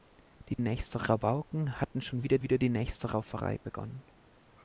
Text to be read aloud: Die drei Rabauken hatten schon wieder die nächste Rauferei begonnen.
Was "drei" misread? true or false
true